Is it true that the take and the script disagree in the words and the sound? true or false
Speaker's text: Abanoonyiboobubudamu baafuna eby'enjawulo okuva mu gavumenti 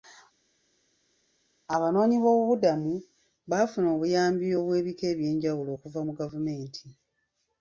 true